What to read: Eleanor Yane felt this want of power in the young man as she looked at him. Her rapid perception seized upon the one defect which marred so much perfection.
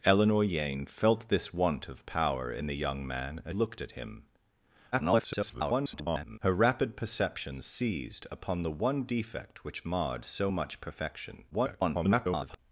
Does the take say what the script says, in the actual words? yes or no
no